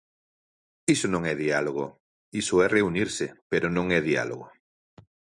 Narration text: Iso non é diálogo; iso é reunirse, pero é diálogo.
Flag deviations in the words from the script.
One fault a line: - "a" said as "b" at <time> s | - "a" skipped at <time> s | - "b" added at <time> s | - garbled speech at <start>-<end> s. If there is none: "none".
- "non" added at 3.7 s